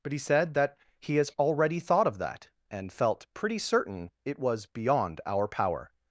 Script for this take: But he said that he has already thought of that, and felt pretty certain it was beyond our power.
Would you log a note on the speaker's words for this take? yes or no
no